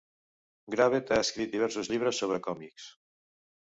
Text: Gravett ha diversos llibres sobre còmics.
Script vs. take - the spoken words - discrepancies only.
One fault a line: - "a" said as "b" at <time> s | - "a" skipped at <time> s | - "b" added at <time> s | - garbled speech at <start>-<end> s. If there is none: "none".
- "escrit" added at 1.2 s